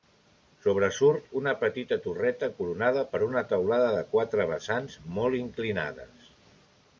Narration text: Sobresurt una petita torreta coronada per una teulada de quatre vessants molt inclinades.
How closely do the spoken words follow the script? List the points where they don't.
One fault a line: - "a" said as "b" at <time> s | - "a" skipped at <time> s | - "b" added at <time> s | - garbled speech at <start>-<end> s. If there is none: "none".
none